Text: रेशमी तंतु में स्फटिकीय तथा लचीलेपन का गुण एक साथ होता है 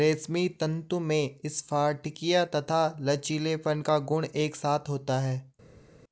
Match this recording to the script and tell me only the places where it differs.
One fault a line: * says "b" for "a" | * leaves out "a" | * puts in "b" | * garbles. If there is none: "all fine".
all fine